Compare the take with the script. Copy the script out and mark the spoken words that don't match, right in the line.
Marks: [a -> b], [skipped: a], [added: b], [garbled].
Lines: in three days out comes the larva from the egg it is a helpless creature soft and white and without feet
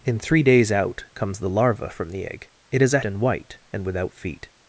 in three days out comes the larva from the egg it is a [skipped: helpless creature soft] and white and without feet